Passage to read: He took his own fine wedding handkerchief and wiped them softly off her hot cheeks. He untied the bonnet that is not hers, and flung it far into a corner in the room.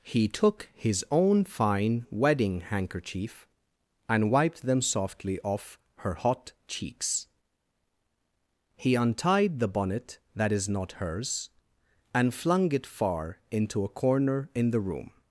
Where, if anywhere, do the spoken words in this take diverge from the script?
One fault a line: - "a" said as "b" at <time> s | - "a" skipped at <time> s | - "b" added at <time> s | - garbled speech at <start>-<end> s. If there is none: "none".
none